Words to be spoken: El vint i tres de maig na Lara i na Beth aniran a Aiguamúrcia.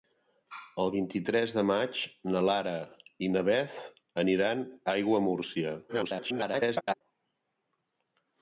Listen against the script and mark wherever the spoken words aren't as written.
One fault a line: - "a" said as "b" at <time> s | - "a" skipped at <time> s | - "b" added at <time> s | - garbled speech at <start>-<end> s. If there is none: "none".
- garbled speech at 5.9-7.0 s